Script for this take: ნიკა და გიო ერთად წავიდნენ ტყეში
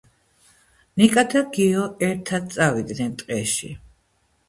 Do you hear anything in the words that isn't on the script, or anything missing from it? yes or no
no